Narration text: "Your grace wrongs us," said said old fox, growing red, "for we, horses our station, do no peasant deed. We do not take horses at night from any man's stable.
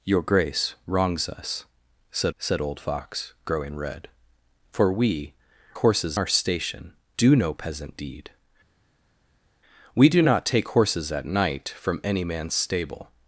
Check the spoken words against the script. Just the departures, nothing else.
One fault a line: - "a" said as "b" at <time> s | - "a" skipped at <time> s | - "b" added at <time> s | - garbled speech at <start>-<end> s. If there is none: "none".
none